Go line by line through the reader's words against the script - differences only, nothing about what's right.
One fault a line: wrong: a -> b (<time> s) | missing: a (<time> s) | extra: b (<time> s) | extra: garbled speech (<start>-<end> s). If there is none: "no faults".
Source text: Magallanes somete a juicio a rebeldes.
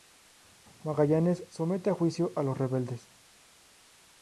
extra: los (2.4 s)